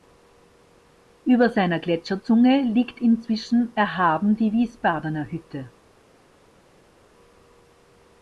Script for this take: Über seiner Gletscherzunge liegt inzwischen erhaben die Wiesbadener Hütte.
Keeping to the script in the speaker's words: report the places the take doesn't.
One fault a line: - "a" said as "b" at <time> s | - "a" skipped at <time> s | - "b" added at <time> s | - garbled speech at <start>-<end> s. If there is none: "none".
none